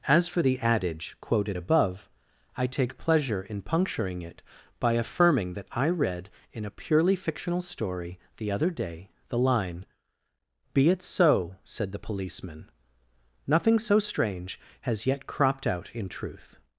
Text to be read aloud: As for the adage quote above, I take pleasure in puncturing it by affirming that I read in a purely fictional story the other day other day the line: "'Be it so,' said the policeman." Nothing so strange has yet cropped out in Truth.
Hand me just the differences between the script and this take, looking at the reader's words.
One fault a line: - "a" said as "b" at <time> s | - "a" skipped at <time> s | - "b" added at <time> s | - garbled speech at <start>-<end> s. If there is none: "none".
- "quote" said as "quoted" at 1.2 s
- "other day" skipped at 9.1 s